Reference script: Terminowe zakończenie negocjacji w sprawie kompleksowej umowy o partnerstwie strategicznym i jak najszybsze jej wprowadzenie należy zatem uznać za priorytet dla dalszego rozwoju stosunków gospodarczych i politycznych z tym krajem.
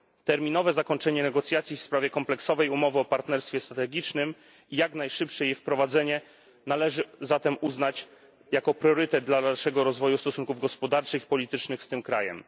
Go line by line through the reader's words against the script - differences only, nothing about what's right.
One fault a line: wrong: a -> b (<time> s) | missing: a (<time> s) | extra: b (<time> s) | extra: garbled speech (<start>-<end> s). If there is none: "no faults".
no faults